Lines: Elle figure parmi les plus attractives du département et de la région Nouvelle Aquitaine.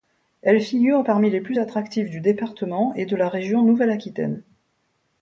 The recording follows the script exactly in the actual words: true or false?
true